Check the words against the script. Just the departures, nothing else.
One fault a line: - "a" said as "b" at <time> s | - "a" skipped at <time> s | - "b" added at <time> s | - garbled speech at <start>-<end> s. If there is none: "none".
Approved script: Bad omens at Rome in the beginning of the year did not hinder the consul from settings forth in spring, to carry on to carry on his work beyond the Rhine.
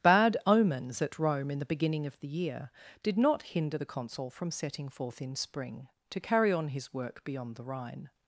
- "settings" said as "setting" at 4.5 s
- "to carry on" skipped at 6.7 s